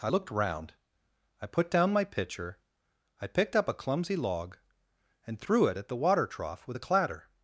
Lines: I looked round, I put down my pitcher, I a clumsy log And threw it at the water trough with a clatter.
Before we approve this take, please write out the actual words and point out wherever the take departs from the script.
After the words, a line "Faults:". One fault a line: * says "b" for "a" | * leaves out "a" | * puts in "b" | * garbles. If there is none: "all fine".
I looked round, I put down my pitcher, I picked up a clumsy log And threw it at the water trough with a clatter.
Faults:
* puts in "picked up"